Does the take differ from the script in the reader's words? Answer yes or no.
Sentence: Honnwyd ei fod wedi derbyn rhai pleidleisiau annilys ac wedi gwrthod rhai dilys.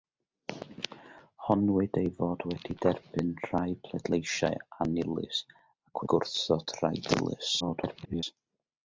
yes